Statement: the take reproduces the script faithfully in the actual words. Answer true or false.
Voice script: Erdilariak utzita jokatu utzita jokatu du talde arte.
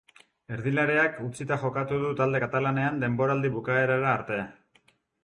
false